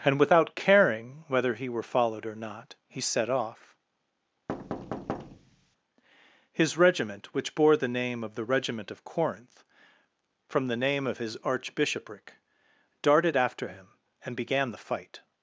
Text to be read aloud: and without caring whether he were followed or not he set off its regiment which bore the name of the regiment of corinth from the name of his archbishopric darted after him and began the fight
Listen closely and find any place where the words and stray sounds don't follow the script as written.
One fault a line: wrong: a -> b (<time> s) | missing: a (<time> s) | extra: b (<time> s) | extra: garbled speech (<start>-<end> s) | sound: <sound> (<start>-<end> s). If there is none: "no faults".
sound: thud (4.5-5.8 s)
wrong: its -> his (6.5 s)